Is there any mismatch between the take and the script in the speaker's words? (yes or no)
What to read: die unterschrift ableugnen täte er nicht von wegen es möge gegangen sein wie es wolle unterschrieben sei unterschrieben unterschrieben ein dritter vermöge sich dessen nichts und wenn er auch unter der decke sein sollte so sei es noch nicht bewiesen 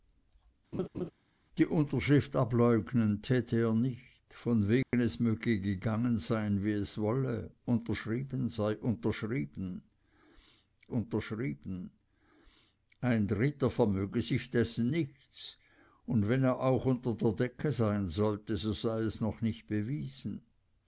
no